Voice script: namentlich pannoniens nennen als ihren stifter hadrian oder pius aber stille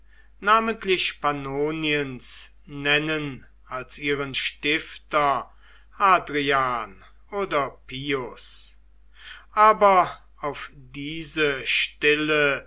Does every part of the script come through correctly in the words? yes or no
no